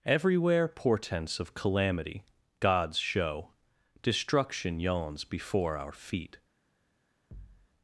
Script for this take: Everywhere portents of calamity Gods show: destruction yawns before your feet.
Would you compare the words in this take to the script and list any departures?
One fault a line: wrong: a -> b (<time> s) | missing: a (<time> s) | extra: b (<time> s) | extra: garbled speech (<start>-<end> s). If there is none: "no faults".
wrong: your -> our (5.8 s)